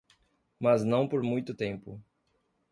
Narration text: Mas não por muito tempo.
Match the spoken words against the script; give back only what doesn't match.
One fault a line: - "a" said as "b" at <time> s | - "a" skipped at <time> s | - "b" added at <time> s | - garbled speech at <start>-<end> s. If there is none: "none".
none